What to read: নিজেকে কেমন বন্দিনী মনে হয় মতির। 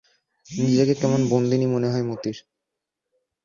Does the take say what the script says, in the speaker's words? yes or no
yes